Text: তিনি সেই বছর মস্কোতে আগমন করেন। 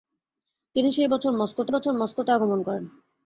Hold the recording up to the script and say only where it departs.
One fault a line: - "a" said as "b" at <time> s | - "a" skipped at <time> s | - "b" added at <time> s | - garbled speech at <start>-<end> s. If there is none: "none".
- "বছর মস্কোতে" added at 1.7 s